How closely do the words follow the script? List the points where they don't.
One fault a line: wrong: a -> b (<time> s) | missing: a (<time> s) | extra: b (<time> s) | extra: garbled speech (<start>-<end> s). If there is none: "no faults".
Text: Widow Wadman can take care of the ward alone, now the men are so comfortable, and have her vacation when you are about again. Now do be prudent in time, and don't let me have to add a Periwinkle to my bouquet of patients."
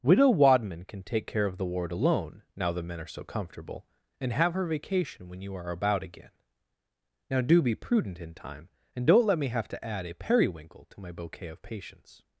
no faults